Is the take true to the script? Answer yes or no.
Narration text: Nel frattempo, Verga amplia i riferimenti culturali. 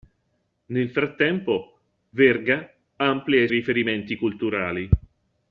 yes